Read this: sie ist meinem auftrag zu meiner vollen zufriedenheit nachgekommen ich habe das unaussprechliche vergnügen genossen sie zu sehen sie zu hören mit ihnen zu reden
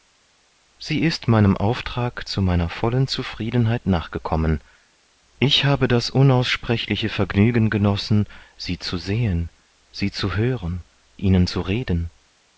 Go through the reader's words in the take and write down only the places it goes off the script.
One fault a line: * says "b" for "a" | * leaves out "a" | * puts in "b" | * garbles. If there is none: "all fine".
* leaves out "mit"